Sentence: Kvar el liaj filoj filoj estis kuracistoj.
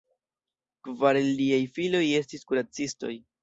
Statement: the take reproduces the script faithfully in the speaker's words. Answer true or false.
false